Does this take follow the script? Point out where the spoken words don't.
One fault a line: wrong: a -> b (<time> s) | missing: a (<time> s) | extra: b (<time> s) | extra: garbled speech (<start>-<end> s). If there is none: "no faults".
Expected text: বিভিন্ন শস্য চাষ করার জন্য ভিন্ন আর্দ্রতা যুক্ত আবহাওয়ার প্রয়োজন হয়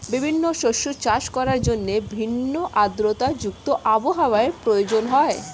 no faults